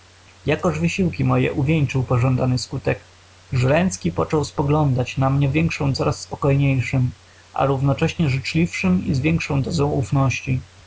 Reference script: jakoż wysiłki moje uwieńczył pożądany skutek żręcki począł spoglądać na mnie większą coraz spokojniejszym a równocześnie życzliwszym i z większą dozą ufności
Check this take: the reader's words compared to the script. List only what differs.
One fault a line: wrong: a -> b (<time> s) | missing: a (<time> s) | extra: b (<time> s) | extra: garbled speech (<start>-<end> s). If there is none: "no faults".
no faults